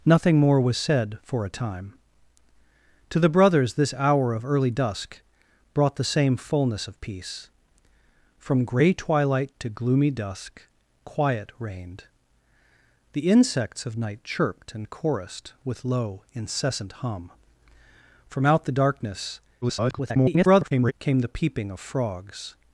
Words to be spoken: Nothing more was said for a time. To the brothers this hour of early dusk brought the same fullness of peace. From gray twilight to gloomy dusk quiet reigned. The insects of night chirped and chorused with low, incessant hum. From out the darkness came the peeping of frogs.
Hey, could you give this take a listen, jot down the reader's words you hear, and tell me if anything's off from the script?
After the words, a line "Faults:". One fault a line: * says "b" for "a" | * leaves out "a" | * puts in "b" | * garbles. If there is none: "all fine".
Nothing more was said for a time. To the brothers this hour of early dusk brought the same fullness of peace. From gray twilight to gloomy dusk quiet reigned. The insects of night chirped and chorused with low, incessant hum. From out the darkness [garbled] came the peeping of frogs.
Faults:
* garbles